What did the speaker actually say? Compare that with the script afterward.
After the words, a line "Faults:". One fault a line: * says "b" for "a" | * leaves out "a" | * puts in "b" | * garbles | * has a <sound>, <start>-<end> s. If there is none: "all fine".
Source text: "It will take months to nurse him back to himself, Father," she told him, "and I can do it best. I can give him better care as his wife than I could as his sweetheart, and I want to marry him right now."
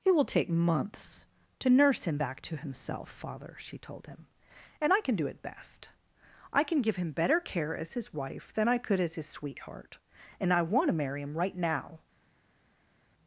"It will take months to nurse him back to himself, Father," she told him, "and I can do it best. I can give him better care as his wife than I could as his sweetheart, and I want to marry him right now."
Faults:
all fine